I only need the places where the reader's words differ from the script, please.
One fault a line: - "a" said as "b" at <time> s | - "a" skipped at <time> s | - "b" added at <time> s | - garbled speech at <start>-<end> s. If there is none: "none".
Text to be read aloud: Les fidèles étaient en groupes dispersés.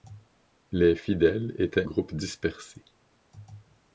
- "en" skipped at 1.9 s